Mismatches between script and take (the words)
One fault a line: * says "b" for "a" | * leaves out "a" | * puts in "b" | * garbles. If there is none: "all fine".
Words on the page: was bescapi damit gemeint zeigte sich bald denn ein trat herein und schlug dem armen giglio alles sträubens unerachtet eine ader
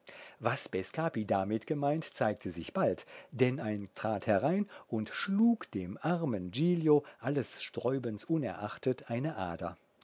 all fine